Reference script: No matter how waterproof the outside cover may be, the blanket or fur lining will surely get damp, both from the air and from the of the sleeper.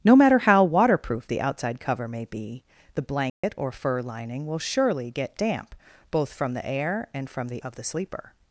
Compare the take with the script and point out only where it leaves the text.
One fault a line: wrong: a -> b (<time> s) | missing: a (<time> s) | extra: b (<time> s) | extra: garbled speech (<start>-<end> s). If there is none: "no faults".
no faults